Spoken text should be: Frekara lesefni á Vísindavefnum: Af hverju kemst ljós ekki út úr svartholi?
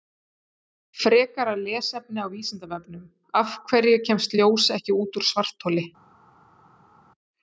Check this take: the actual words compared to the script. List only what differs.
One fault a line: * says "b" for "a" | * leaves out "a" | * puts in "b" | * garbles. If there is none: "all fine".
all fine